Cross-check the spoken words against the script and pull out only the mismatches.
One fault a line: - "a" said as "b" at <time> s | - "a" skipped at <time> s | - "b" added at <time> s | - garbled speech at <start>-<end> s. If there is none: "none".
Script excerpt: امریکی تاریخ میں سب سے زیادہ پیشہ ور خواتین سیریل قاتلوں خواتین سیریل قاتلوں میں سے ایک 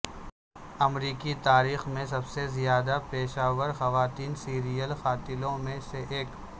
- "خواتین سیریل قاتلوں" skipped at 5.6 s